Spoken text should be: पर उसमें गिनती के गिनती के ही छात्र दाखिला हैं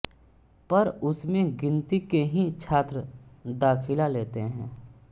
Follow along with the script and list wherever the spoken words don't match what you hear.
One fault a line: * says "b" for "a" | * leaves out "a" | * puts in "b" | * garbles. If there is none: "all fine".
* leaves out "गिनती के"
* puts in "लेते"